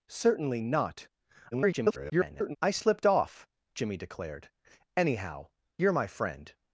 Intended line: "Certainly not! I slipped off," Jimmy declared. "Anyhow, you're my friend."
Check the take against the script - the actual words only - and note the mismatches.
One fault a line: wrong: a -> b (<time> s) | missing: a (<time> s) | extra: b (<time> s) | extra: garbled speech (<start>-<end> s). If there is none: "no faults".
extra: garbled speech (1.5-2.6 s)